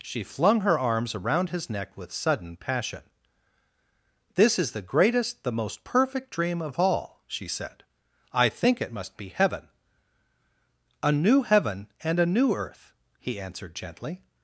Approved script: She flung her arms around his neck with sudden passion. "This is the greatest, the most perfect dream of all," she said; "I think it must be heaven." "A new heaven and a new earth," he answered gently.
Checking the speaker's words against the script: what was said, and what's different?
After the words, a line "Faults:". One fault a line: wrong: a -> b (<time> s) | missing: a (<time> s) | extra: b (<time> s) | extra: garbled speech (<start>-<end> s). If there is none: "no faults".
She flung her arms around his neck with sudden passion. "This is the greatest, the most perfect dream of all," she said; "I think it must be heaven." "A new heaven and a new earth," he answered gently.
Faults:
no faults